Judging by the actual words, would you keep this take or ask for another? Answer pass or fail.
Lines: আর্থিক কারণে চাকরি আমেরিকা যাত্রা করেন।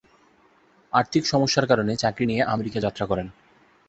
fail